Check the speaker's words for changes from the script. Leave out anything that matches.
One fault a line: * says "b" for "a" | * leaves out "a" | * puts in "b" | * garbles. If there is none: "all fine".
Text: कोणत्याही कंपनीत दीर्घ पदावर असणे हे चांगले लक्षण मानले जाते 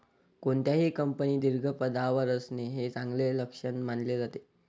all fine